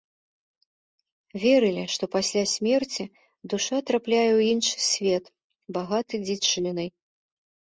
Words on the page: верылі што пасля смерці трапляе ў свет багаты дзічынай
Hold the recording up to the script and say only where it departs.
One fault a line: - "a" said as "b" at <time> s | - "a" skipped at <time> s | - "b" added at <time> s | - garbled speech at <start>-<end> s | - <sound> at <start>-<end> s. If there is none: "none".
- "душа" added at 3.6 s
- "іншы" added at 4.6 s